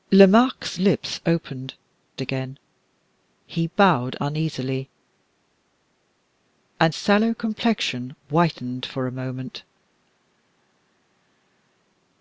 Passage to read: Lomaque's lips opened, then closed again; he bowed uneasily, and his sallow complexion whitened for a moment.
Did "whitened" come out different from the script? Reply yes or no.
no